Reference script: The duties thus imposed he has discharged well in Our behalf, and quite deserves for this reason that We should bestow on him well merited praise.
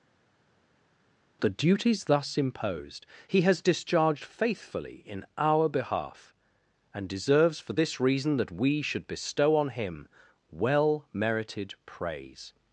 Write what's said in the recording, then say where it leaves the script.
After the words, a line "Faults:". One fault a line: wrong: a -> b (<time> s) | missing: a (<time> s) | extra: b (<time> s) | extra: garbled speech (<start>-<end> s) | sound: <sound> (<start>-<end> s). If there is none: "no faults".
The duties thus imposed he has discharged faithfully in Our behalf, and deserves for this reason that We should bestow on him well merited praise.
Faults:
wrong: well -> faithfully (4.2 s)
missing: quite (7.1 s)